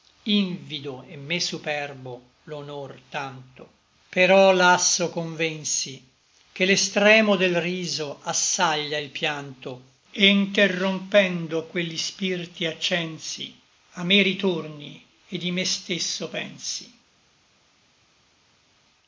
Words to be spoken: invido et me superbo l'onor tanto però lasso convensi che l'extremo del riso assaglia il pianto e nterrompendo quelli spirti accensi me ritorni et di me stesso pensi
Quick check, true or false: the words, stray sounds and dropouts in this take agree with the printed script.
false